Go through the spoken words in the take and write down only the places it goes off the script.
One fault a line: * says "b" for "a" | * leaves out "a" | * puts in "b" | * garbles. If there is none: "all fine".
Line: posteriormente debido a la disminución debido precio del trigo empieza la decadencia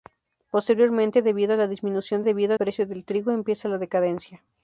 all fine